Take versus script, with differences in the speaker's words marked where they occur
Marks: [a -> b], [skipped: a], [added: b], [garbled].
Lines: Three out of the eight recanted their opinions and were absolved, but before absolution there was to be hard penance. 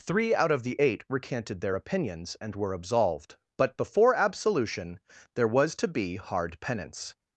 Three out of the eight recanted their opinions and were absolved, but before absolution there was to be hard penance.